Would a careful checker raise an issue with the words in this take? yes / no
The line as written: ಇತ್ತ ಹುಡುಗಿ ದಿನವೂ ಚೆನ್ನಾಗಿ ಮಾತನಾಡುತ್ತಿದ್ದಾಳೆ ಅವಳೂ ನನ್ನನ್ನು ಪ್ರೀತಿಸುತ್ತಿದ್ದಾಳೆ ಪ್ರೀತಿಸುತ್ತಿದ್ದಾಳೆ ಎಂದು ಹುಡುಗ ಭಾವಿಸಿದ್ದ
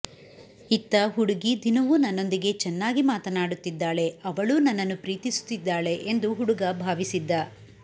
yes